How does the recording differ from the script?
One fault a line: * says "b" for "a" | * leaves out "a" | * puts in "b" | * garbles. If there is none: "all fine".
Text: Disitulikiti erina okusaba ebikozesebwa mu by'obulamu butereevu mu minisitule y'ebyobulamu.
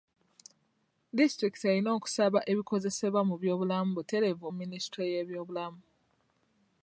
all fine